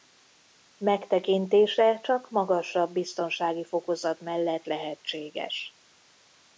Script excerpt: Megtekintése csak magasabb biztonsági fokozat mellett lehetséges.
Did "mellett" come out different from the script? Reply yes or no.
no